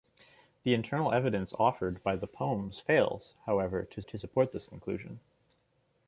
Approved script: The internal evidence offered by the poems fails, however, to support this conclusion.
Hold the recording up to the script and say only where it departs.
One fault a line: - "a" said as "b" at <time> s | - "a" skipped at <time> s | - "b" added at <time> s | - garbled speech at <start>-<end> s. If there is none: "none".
- "to" added at 4.0 s